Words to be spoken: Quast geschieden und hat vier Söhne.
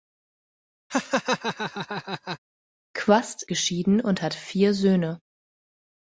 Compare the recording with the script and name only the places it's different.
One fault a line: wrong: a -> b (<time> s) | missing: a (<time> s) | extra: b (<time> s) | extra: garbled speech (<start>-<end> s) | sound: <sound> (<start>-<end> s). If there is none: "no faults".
sound: laugh (0.9-2.4 s)